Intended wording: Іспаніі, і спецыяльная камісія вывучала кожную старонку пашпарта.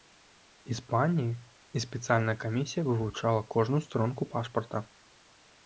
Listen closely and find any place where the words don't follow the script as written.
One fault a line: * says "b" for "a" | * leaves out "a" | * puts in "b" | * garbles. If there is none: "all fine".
all fine